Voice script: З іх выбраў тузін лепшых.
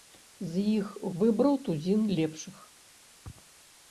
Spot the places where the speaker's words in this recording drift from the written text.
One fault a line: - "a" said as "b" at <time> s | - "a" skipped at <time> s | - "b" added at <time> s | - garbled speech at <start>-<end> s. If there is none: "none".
none